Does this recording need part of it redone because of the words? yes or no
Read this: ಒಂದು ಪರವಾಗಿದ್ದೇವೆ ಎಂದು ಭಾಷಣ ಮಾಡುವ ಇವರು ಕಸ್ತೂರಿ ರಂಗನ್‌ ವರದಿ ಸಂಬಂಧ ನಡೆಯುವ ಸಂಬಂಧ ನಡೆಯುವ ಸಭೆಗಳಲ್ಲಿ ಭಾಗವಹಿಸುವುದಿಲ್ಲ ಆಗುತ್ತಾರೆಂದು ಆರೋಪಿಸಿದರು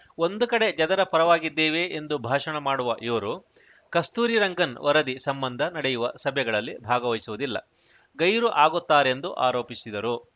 yes